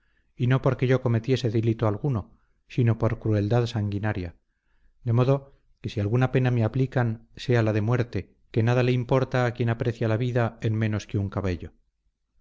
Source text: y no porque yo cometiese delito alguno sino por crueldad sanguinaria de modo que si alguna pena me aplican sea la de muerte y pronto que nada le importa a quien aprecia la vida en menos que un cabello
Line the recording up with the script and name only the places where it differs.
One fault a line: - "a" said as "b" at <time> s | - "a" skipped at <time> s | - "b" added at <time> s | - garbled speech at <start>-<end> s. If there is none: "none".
- "y pronto" skipped at 8.3 s